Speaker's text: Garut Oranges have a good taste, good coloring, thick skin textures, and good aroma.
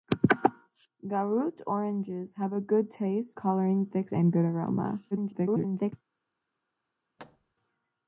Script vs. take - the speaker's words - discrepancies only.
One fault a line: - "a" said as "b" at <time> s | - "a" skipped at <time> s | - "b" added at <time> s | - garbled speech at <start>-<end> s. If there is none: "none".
- "good" skipped at 3.4 s
- "skin textures" skipped at 4.1 s
- garbled speech at 5.1-5.9 s